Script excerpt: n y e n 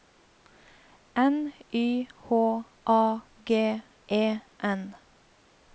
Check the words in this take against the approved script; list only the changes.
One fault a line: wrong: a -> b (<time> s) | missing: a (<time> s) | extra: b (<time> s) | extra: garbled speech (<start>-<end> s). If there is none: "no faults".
extra: h a g (2.3 s)